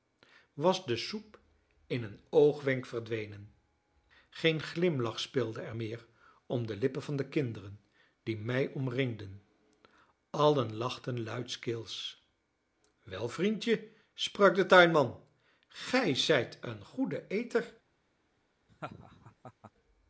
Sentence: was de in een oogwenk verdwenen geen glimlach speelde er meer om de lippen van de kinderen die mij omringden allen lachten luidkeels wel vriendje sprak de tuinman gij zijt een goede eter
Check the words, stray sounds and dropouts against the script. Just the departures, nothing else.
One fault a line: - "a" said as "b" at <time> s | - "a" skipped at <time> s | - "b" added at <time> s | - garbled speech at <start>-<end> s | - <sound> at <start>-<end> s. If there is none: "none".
- "soep" added at 1.0 s
- laugh at 18.7-19.7 s